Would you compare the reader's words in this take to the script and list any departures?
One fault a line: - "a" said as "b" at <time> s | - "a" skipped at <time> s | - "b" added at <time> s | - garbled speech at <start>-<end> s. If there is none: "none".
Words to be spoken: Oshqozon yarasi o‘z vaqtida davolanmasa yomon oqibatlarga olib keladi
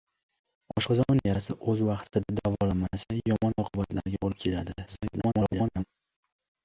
- garbled speech at 4.9-5.8 s